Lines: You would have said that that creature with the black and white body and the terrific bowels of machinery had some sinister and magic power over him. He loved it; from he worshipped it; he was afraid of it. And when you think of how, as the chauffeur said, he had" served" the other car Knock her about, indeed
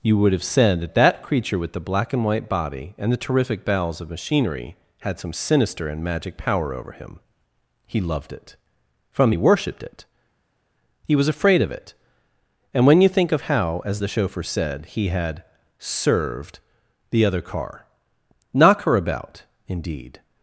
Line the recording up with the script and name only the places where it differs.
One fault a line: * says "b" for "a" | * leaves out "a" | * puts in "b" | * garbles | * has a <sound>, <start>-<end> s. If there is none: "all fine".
all fine